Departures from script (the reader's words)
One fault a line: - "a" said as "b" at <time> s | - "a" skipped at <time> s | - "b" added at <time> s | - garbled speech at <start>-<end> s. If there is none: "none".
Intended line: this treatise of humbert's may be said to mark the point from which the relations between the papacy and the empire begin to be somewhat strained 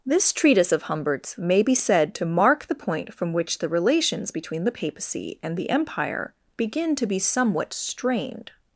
none